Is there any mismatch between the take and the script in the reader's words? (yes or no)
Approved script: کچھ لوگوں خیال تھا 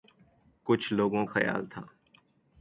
no